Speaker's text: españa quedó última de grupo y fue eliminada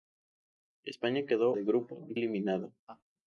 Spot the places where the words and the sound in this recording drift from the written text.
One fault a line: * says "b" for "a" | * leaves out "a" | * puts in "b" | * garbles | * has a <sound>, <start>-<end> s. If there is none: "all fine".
* leaves out "última"
* leaves out "fue"
* has a laugh, 2.9-3.0 s